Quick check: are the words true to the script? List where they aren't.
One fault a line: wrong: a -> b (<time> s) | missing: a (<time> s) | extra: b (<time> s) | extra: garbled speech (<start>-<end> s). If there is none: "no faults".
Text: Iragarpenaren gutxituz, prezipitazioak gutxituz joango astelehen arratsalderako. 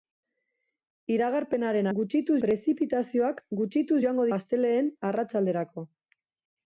no faults